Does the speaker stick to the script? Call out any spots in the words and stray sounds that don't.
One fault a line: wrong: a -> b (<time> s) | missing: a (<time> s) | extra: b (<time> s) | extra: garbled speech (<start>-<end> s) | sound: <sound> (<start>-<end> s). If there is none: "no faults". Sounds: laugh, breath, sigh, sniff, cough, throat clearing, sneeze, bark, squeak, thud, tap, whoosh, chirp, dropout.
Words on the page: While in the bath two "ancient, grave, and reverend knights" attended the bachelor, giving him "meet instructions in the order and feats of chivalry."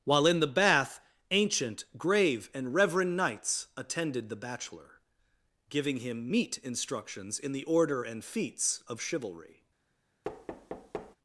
missing: two (1.0 s)
sound: thud (10.2-11.2 s)